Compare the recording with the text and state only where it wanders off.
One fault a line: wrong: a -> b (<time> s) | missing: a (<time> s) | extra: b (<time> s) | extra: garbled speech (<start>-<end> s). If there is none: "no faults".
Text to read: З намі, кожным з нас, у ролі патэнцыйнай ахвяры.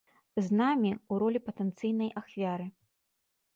missing: кожным з нас (0.9 s)